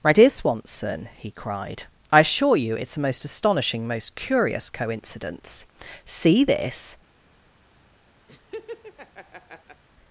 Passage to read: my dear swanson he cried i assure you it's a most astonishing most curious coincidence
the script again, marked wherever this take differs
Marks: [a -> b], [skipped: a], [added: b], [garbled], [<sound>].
my dear swanson he cried i assure you it's a most astonishing most curious coincidence [added: see this] [laugh]